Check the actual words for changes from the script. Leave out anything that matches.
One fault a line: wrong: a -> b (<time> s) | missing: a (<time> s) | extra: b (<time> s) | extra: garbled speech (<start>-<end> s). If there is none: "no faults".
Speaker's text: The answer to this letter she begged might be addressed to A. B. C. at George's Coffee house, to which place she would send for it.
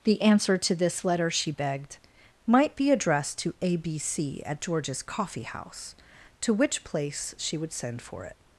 no faults